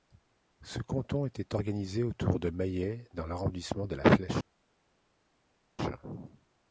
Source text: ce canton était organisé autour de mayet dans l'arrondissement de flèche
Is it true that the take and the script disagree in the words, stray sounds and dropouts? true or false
true